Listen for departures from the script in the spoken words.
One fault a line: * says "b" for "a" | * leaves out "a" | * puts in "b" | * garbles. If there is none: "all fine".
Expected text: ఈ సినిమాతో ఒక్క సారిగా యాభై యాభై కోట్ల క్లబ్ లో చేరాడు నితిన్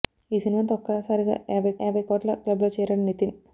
all fine